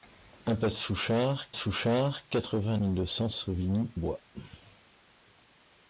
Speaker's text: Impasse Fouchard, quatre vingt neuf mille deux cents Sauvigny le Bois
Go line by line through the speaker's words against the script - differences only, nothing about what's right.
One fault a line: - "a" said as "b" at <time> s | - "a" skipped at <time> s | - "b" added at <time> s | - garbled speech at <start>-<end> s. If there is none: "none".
- "Fouchard" added at 1.6 s
- "neuf" skipped at 2.8 s
- "le" skipped at 3.9 s